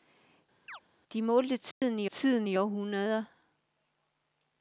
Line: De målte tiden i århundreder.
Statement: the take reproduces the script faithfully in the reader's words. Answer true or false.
false